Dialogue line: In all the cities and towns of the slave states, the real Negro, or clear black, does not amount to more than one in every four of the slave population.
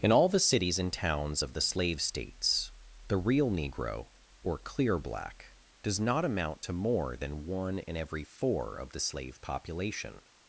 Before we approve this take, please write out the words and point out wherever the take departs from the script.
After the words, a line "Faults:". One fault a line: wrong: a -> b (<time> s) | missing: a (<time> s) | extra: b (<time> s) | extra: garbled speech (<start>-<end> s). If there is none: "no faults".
In all the cities and towns of the slave states, the real Negro, or clear black, does not amount to more than one in every four of the slave population.
Faults:
no faults